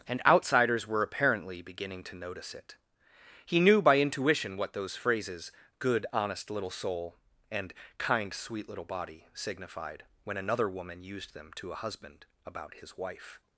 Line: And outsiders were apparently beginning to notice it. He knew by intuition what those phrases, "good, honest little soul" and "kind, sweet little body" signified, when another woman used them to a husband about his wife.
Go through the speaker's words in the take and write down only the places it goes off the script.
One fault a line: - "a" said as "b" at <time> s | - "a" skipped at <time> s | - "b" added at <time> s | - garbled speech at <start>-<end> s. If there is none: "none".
none